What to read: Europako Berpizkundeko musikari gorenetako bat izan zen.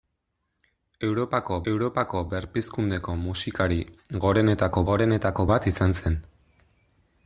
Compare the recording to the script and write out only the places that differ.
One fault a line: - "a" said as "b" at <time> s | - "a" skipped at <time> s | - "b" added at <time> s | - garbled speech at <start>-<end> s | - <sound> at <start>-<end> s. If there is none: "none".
- "europako" added at 1.7 s
- "gorenetako" added at 4.9 s